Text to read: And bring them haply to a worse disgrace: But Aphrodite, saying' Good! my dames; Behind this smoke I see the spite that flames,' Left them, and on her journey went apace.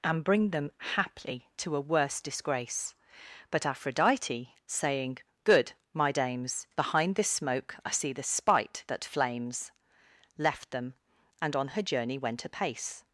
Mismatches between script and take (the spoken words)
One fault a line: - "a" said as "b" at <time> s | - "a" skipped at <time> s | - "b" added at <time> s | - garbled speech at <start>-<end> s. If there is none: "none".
none